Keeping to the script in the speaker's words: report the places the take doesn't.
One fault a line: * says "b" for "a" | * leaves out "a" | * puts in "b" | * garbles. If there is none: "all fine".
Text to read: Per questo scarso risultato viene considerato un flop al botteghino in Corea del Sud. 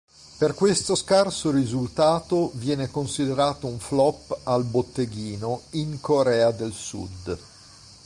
all fine